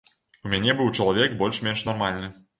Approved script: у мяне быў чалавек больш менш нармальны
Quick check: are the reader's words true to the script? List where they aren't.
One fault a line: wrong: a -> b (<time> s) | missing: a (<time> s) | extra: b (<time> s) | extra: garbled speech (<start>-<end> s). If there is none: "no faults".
no faults